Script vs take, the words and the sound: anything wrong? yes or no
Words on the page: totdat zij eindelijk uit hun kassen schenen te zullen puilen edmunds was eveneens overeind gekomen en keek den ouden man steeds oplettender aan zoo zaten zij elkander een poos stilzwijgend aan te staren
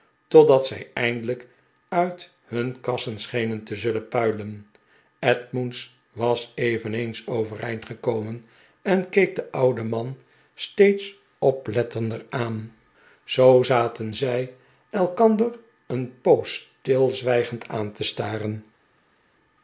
no